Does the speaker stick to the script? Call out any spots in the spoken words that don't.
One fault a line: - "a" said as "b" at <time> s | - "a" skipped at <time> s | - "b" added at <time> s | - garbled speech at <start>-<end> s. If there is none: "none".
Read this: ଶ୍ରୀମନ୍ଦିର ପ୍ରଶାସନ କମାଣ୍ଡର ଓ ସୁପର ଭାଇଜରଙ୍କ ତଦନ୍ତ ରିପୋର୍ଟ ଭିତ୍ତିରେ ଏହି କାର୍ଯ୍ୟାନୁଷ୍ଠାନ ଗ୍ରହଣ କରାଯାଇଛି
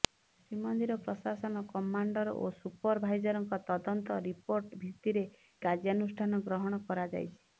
- "ଏହି" skipped at 5.3 s